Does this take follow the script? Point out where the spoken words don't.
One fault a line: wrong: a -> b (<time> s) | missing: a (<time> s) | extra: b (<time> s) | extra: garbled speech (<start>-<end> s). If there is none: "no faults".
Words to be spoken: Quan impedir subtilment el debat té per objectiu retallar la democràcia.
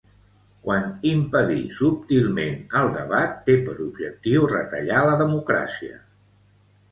no faults